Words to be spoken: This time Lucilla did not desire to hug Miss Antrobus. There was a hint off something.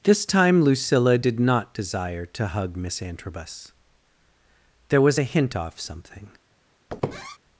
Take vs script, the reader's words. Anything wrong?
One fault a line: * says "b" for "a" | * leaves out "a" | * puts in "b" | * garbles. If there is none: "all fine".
all fine